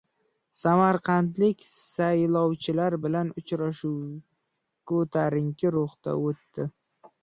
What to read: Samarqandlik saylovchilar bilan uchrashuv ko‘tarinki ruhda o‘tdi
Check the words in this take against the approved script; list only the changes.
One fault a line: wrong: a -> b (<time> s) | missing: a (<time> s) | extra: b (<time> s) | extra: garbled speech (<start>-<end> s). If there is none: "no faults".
no faults